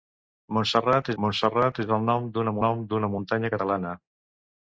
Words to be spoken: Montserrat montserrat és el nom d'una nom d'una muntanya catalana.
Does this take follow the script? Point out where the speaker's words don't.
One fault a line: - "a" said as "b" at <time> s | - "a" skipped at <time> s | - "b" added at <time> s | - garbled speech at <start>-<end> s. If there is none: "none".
none